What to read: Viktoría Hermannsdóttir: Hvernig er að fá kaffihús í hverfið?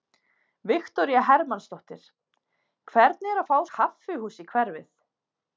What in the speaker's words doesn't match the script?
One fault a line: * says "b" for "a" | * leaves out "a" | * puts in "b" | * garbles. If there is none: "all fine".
all fine